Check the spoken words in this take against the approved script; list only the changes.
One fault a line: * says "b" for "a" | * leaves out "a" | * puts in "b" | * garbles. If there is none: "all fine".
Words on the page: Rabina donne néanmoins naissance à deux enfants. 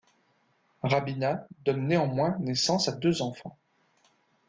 all fine